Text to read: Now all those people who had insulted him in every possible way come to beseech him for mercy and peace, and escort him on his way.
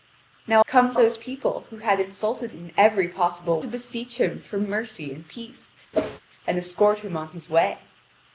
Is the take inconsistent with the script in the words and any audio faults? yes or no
yes